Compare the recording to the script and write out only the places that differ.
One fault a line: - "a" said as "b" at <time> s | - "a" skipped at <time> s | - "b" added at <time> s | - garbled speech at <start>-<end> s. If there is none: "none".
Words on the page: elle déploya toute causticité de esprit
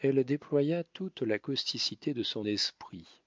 - "la" added at 1.2 s
- "son" added at 2.2 s